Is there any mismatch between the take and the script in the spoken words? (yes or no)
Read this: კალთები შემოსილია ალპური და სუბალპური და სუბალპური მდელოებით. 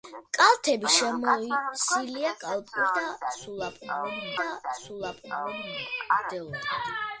no